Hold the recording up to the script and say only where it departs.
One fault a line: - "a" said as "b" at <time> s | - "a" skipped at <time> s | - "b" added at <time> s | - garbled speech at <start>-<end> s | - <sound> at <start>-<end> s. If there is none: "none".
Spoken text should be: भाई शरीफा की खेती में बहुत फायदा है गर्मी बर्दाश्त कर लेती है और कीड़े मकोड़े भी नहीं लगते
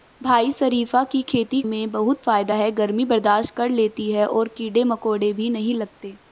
none